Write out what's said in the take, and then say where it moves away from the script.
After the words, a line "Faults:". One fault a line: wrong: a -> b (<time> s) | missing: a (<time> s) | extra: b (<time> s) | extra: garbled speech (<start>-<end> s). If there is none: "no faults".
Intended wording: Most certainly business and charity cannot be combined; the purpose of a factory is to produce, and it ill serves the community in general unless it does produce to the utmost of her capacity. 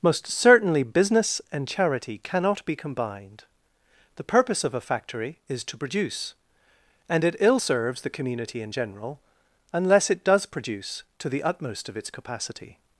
Most certainly business and charity cannot be combined; the purpose of a factory is to produce, and it ill serves the community in general unless it does produce to the utmost of its capacity.
Faults:
wrong: her -> its (12.0 s)